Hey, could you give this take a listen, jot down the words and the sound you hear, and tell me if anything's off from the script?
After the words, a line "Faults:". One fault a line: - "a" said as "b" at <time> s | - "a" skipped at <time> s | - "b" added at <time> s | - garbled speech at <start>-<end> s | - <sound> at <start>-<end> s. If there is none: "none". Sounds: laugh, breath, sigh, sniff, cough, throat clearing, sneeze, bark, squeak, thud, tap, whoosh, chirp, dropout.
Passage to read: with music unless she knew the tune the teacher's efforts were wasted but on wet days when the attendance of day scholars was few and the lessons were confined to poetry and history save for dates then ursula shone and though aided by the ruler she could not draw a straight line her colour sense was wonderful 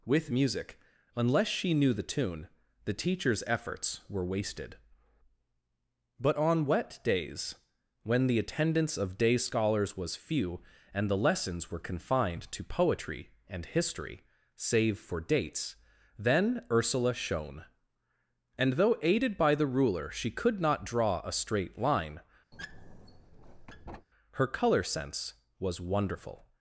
with music unless she knew the tune the teacher's efforts were wasted but on wet days when the attendance of day scholars was few and the lessons were confined to poetry and history save for dates then ursula shone and though aided by the ruler she could not draw a straight line her colour sense was wonderful
Faults:
- squeak at 22.5-24.1 s